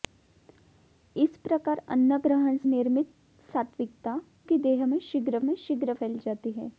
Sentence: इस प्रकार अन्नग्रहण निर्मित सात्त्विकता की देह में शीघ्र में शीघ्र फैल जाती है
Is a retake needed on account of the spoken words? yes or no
no